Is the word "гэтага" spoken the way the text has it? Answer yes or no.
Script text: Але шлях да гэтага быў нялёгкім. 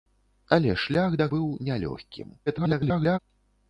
no